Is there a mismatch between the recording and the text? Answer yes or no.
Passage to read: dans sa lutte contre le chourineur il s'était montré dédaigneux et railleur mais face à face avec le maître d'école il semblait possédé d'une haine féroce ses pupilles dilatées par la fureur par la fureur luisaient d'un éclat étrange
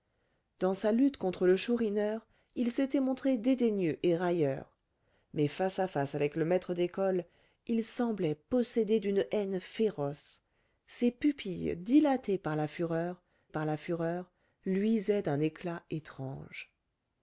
no